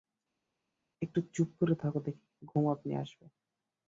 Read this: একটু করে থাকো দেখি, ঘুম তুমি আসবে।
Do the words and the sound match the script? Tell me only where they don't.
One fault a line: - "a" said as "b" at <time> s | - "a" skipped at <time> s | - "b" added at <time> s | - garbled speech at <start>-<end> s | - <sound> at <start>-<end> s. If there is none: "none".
- "চুপ" added at 1.3 s
- "তুমি" said as "আপনি" at 2.7 s